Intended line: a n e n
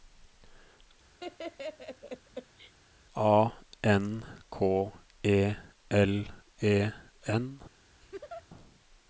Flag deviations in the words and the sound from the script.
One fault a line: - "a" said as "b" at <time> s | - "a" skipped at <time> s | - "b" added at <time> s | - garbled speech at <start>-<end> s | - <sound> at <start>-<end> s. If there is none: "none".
- laugh at 1.2-2.7 s
- "k e l" added at 4.5 s
- laugh at 8.0-8.5 s